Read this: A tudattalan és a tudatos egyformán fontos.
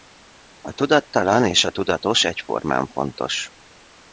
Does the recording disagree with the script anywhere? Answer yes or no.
no